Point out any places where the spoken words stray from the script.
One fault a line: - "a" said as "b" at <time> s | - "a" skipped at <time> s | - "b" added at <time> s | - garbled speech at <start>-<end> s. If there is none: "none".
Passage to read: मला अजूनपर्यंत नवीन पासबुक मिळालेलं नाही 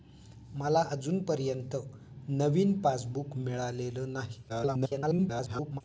- garbled speech at 4.5-5.8 s